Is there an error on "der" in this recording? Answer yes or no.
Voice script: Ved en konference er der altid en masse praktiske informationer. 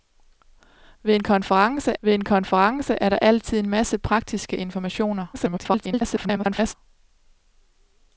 no